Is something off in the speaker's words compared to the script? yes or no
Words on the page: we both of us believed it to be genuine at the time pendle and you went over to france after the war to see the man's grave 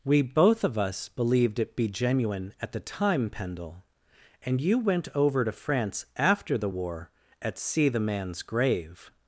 yes